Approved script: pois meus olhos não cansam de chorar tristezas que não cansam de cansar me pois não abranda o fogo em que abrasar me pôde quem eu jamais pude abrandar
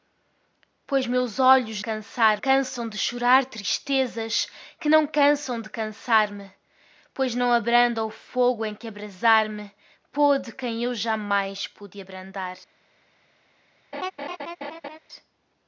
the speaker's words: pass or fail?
fail